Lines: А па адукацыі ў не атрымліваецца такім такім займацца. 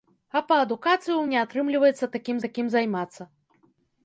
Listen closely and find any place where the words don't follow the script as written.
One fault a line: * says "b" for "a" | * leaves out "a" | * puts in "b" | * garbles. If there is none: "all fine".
all fine